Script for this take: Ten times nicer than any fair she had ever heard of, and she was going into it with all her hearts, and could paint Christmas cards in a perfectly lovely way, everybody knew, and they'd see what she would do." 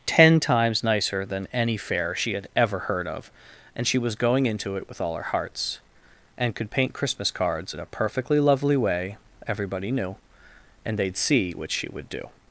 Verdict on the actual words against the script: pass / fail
pass